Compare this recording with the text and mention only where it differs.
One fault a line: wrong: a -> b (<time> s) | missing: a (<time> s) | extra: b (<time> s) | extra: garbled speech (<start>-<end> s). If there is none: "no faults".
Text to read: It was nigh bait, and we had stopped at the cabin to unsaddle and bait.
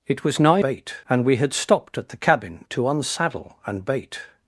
no faults